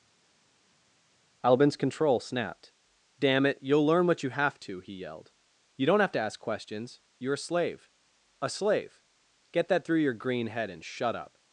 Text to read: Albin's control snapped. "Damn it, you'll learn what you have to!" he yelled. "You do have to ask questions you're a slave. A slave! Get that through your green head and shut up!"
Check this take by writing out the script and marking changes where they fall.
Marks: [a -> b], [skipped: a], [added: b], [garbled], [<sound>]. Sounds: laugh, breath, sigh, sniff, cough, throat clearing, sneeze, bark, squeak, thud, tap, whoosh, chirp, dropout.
Albin's control snapped. "Damn it, you'll learn what you have to!" he yelled. "You [do -> don't] have to ask questions you're a slave. A slave! Get that through your green head and shut up!"